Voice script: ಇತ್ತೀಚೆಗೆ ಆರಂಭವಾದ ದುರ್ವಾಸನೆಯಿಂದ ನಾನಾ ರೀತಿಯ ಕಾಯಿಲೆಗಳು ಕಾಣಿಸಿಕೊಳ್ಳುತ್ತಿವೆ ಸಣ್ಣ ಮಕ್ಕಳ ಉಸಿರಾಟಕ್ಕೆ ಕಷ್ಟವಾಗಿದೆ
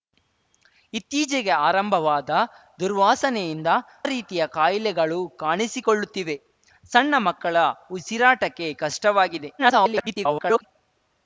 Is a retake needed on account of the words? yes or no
yes